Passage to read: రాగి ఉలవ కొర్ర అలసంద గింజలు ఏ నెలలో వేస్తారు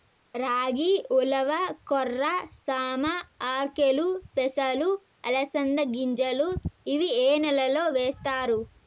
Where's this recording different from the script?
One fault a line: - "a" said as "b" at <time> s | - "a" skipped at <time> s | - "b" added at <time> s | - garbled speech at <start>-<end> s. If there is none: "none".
- "సామ ఆర్కెలు పెసలు" added at 2.6 s
- "ఇవి" added at 6.9 s